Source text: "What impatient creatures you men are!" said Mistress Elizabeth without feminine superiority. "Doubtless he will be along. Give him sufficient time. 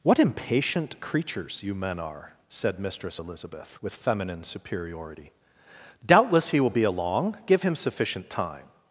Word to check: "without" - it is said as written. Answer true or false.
false